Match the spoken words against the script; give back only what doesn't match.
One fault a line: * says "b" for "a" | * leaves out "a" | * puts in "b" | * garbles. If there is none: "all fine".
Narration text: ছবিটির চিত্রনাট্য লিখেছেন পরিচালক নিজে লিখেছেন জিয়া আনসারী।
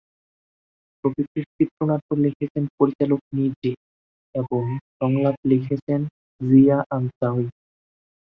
* puts in "এবং সংলাপ"